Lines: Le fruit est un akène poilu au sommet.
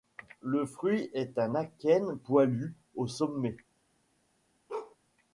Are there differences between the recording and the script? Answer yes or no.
no